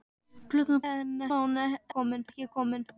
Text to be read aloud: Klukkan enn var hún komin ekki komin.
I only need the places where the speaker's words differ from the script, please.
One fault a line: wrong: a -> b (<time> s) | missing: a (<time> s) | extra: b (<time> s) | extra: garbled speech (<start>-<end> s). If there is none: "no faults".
no faults